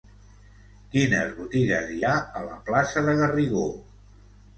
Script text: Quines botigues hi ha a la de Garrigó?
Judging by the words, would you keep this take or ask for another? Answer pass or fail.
fail